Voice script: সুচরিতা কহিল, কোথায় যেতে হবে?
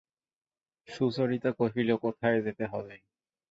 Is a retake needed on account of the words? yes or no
no